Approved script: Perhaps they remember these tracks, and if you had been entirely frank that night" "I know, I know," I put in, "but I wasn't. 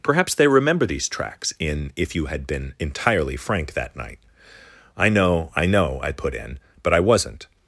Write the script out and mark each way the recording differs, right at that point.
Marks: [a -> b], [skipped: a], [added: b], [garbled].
Perhaps they remember these tracks, [and -> in] if you had been entirely frank that night" "I know, I know," I put in, "but I wasn't.